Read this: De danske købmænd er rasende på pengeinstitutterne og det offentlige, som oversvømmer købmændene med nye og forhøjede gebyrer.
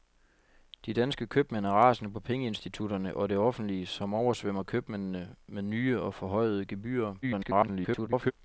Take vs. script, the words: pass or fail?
fail